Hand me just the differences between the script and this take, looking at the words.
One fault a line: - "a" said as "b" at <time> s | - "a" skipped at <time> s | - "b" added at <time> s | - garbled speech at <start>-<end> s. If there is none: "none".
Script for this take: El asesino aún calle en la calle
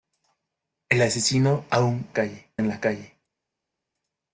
none